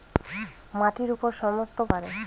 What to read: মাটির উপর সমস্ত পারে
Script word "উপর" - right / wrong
right